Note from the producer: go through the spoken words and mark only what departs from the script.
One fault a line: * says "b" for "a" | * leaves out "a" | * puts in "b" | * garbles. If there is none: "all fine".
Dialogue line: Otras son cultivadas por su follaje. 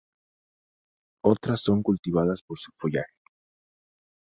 all fine